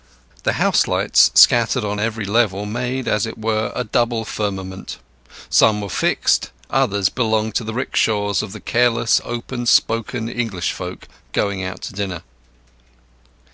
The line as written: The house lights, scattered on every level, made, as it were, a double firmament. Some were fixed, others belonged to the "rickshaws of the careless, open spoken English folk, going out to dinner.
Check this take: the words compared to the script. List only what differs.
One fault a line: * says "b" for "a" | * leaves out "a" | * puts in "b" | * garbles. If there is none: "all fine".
all fine